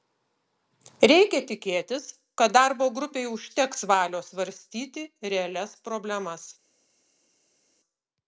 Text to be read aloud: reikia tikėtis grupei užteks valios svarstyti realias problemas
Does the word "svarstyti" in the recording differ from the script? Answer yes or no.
no